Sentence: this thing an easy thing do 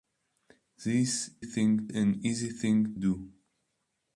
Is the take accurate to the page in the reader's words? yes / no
yes